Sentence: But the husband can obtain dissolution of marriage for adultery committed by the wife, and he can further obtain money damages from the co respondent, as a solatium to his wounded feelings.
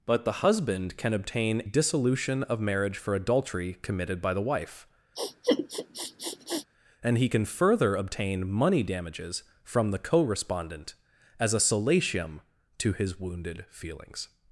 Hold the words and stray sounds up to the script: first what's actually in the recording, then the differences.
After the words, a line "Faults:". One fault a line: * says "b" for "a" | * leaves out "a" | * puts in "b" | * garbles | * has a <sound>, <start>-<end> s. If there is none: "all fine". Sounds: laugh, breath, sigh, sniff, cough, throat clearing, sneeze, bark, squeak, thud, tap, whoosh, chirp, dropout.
But the husband can obtain dissolution of marriage for adultery committed by the wife, and he can further obtain money damages from the co respondent, as a solatium to his wounded feelings.
Faults:
* has a sniff, 5.2-6.7 s